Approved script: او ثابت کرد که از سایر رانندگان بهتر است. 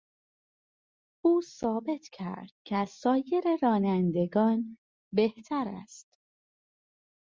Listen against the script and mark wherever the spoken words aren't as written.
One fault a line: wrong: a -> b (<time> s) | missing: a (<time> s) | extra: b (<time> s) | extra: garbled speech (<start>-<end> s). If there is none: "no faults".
no faults